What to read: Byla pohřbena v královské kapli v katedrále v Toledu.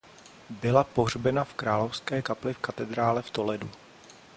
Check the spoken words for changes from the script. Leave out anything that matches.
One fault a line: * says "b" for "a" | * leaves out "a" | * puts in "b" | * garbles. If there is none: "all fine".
all fine